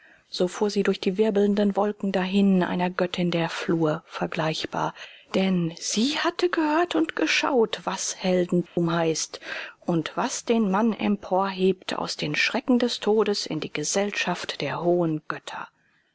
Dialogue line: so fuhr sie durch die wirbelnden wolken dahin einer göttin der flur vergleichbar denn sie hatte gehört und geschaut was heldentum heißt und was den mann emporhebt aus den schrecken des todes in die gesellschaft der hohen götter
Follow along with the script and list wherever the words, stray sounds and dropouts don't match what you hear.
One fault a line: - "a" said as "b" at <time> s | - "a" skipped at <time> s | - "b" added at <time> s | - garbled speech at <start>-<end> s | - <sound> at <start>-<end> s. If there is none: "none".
- dropout at 8.7-8.8 s